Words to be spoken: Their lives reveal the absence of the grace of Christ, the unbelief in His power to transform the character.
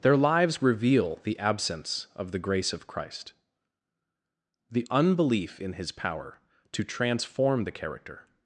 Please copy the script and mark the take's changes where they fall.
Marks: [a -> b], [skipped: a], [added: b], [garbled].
Their lives reveal the absence of the grace of Christ, the unbelief in His power to transform the character.